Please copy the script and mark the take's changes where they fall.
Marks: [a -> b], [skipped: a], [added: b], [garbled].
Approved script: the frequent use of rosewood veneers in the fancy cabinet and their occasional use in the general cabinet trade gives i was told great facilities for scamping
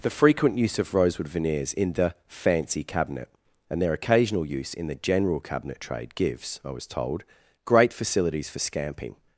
the frequent use of rosewood veneers in the fancy cabinet and their occasional use in the general cabinet trade gives i was told great facilities for scamping